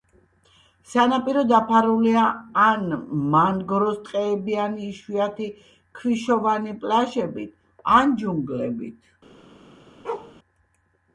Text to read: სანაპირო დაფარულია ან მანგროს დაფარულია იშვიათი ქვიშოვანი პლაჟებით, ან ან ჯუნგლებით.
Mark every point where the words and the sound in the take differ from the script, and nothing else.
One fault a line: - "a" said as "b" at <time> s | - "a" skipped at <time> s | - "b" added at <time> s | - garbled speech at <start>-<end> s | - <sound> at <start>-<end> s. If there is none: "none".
- "დაფარულია" said as "ტყეებიანი" at 4.1 s
- "ან" skipped at 8.2 s
- bark at 10.0-10.3 s